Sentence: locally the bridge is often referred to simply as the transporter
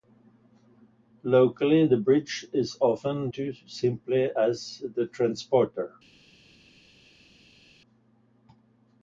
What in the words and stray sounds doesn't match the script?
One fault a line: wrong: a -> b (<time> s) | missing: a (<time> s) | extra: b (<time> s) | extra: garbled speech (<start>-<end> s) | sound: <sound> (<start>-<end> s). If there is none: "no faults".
missing: referred (3.3 s)